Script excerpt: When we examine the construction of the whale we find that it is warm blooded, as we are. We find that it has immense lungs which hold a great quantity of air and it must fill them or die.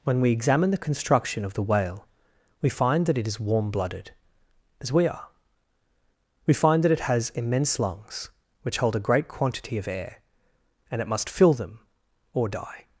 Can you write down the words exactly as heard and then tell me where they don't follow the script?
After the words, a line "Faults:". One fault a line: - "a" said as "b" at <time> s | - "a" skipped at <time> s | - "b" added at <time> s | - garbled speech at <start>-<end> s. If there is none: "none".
When we examine the construction of the whale we find that it is warm blooded, as we are. We find that it has immense lungs which hold a great quantity of air and it must fill them or die.
Faults:
none